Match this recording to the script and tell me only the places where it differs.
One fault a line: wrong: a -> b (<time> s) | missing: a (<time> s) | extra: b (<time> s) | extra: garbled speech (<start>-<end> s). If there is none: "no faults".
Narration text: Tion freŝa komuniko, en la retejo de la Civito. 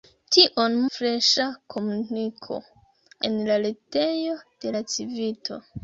no faults